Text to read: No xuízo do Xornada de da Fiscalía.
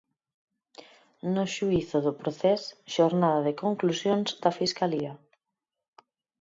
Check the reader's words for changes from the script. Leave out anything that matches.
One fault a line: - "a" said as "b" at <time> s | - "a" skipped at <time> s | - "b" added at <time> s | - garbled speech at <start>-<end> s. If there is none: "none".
- "Procés" added at 2.2 s
- "conclusións" added at 3.6 s